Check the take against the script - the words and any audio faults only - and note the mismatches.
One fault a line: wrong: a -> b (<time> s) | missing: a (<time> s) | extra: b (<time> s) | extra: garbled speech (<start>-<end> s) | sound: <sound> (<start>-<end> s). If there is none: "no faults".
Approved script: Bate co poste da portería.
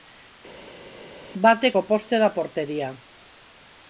no faults